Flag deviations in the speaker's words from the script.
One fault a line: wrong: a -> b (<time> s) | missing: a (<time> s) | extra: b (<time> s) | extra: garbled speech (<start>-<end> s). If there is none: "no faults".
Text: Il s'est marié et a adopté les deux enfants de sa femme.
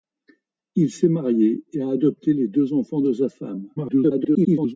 extra: garbled speech (3.8-4.8 s)